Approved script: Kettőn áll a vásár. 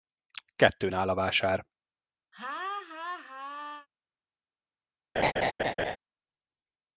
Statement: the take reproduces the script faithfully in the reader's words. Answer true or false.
true